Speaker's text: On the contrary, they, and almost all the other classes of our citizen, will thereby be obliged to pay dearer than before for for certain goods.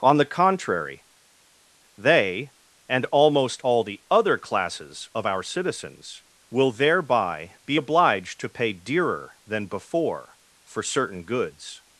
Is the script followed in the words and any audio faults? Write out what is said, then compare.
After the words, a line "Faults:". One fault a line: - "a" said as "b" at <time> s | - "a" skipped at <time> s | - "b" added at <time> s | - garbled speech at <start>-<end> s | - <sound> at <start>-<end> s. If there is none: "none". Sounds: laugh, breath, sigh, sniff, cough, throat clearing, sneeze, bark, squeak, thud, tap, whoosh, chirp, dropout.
On the contrary, they, and almost all the other classes of our citizens, will thereby be obliged to pay dearer than before for certain goods.
Faults:
- "citizen" said as "citizens" at 5.4 s
- "for" skipped at 10.8 s